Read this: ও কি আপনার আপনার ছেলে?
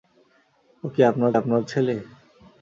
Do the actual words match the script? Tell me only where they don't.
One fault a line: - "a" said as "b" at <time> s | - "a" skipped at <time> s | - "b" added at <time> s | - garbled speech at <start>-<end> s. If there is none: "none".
none